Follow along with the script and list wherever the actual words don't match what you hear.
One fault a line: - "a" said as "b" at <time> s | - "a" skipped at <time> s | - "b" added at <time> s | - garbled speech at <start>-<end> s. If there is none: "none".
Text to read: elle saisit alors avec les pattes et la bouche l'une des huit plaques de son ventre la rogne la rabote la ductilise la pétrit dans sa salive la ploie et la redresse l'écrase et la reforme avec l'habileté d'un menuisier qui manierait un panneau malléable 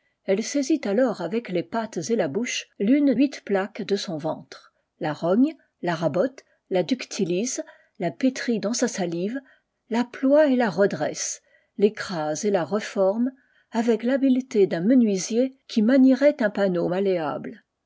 - "des" skipped at 3.1 s